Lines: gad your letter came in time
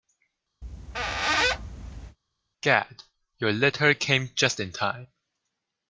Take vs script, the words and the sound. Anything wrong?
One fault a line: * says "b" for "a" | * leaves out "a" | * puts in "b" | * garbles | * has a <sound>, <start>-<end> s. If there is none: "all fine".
* has a squeak, 0.6-2.2 s
* puts in "just"